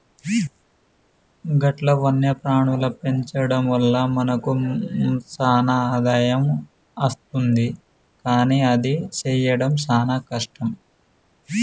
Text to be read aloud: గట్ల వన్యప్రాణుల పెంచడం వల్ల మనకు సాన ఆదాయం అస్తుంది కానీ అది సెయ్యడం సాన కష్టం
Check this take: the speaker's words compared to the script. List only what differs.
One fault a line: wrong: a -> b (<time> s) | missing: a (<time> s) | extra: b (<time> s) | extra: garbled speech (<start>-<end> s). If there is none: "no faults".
no faults